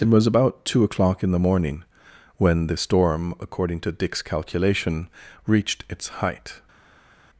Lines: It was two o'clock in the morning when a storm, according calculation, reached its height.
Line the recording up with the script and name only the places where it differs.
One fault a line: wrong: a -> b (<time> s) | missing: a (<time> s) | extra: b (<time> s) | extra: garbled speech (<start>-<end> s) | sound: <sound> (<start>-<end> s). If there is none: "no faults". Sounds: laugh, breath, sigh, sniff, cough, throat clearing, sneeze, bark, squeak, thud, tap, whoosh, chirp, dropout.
extra: about (0.2 s)
wrong: a -> the (2.6 s)
extra: to Dick's (3.8 s)